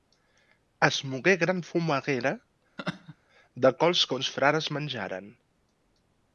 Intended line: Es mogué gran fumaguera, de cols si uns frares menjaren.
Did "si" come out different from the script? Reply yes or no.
yes